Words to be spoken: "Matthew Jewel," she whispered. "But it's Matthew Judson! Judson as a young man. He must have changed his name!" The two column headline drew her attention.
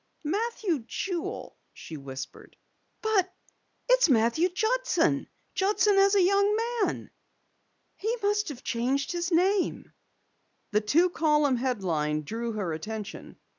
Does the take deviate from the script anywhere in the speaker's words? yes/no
no